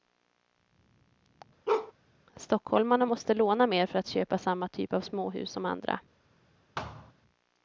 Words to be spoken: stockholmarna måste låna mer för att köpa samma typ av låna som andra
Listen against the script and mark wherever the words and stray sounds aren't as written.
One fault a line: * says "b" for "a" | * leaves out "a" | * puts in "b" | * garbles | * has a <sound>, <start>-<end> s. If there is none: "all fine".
* has a bark, 1.7-1.9 s
* says "småhus" for "låna"
* has a thud, 6.8-7.1 s